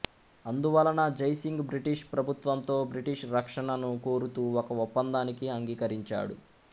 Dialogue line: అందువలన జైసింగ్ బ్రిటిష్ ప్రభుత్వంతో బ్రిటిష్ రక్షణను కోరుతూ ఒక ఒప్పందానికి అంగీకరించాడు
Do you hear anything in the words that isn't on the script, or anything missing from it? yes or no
no